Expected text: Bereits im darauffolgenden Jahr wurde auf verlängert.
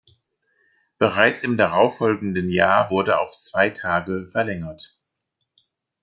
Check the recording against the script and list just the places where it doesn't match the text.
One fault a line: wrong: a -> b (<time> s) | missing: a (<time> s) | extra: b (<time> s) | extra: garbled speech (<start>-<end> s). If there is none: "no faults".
extra: zwei Tage (3.4 s)